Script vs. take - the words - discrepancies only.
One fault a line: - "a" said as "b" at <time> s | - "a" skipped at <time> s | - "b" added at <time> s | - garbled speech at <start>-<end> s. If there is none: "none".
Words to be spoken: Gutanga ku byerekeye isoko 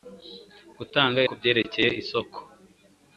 none